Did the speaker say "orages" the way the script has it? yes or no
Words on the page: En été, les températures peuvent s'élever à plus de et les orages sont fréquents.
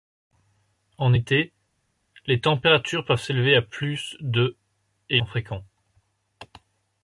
no